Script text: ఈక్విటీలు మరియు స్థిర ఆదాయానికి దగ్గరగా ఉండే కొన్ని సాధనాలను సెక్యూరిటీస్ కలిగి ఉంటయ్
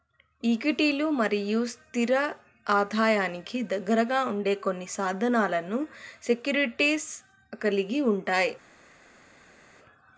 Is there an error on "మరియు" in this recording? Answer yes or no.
no